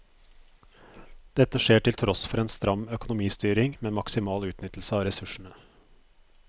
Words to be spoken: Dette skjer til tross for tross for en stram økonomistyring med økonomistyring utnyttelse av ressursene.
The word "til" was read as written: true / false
true